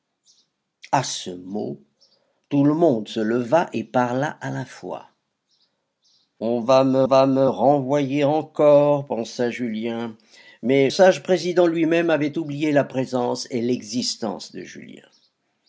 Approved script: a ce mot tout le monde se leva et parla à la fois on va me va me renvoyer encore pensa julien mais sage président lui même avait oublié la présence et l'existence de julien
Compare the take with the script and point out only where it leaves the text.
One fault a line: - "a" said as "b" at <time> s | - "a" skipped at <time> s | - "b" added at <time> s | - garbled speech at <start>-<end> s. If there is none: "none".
none